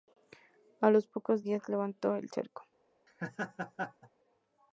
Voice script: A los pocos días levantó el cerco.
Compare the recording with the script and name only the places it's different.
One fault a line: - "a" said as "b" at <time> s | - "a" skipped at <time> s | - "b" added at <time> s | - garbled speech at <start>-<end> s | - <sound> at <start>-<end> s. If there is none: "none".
- laugh at 3.1-4.1 s